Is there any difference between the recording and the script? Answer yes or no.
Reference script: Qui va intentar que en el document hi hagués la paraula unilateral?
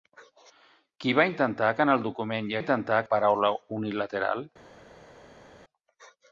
yes